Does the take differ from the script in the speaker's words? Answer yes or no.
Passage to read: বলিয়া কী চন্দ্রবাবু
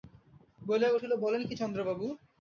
yes